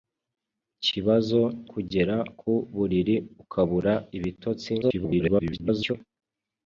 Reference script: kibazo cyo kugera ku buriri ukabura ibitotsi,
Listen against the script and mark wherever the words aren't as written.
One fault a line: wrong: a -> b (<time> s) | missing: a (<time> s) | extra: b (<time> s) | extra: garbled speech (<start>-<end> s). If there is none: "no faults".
missing: cyo (1.4 s)
extra: garbled speech (4.8-5.9 s)